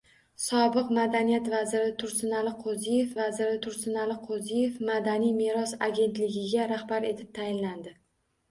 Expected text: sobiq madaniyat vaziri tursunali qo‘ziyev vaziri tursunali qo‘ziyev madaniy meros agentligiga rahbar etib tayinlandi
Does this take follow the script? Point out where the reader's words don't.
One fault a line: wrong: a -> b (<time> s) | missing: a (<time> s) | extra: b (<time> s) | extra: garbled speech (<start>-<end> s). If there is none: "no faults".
no faults